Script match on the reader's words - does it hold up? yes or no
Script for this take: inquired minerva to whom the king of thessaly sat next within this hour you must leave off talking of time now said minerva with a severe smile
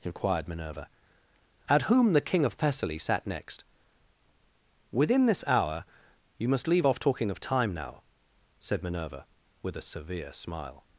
no